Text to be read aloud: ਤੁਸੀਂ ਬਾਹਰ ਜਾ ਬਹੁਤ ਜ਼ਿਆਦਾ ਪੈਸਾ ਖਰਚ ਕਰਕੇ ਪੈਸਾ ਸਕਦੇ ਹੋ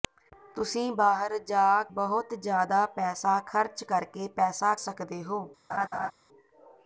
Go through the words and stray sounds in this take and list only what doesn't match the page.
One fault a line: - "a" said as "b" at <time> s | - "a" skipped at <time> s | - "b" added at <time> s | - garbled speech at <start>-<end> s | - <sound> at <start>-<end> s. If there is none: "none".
- laugh at 5.7-6.1 s